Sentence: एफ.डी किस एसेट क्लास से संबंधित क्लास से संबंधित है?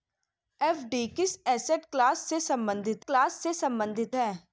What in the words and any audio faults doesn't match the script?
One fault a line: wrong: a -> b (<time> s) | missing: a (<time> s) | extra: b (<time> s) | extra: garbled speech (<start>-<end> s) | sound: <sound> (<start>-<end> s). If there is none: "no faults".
no faults